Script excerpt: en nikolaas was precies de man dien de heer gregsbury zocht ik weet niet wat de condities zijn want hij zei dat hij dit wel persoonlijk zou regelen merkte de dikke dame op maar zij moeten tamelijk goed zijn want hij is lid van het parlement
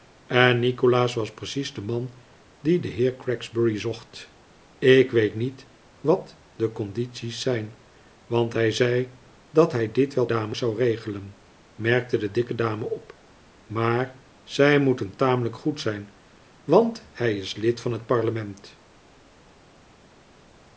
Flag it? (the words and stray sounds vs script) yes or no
yes